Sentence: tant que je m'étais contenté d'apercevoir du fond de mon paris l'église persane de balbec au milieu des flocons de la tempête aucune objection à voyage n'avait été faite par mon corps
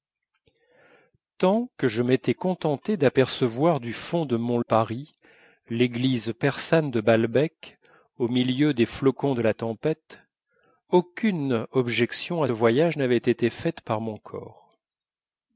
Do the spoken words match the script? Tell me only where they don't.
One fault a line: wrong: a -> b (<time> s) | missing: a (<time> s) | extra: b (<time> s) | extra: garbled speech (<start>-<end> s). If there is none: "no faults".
no faults